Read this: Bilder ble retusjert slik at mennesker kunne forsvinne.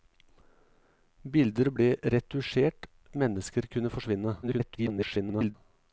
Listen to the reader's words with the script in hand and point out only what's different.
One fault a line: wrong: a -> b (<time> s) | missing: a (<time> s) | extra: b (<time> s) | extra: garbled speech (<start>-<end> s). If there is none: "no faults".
missing: slik (2.9 s)
extra: garbled speech (4.4-5.6 s)